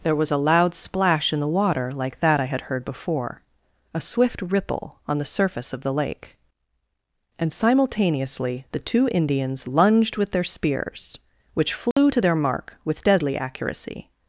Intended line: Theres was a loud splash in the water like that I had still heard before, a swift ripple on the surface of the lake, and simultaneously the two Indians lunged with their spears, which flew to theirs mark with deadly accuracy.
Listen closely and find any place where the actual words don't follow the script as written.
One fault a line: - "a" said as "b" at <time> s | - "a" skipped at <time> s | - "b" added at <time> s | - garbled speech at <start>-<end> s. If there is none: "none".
- "Theres" said as "There" at 0.0 s
- "still" skipped at 2.6 s
- "theirs" said as "their" at 12.2 s